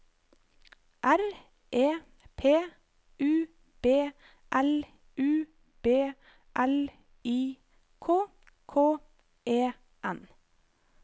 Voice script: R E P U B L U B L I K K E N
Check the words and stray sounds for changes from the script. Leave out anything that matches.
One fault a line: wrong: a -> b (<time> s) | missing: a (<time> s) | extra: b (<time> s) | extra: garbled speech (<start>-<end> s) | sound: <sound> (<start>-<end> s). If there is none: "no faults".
no faults